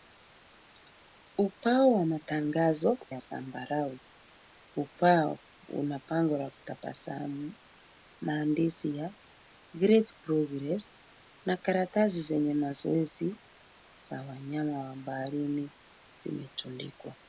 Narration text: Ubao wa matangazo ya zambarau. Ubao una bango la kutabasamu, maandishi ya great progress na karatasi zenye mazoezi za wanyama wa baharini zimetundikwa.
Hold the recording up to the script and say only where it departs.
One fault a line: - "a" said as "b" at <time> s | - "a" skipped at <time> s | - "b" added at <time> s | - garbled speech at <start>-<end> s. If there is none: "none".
none